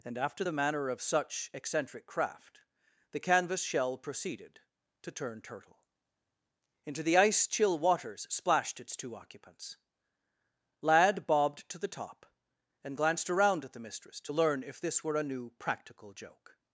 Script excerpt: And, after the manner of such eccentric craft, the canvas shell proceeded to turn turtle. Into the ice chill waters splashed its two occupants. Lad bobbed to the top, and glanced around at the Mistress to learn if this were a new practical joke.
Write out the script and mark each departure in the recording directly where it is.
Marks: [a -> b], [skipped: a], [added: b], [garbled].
And, after the manner of such eccentric craft, the canvas shell proceeded to turn turtle. Into the ice chill waters splashed its two occupants. Lad bobbed to the top, and glanced around at the Mistress to learn if this were a new practical joke.